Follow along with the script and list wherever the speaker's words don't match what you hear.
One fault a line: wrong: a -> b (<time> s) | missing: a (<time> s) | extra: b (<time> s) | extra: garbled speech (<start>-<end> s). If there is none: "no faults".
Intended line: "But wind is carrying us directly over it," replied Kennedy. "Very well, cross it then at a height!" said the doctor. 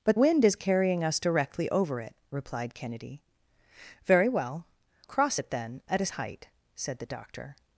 no faults